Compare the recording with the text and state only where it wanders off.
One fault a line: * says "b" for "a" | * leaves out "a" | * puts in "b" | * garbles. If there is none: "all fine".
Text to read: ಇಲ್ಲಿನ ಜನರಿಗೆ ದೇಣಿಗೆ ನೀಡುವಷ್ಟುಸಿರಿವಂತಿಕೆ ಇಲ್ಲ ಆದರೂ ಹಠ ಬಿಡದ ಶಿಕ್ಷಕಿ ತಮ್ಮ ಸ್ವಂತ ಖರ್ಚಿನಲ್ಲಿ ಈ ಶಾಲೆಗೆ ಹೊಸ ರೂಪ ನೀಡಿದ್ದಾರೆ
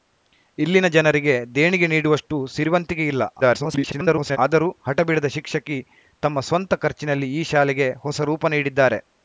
* garbles